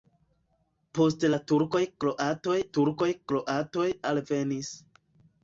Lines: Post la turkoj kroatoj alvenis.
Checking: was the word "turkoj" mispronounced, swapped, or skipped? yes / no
no